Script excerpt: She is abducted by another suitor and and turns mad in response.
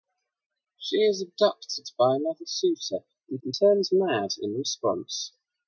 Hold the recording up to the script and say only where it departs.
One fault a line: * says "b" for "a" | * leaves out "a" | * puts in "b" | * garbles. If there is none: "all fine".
all fine